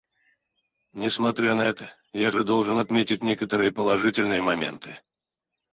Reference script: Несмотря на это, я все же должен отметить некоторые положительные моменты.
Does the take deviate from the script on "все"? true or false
true